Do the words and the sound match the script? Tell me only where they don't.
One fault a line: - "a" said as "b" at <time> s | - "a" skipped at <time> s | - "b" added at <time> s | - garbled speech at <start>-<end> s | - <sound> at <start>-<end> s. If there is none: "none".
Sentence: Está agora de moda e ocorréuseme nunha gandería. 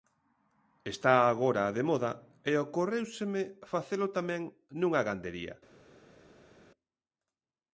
- "facelo tamén" added at 3.7 s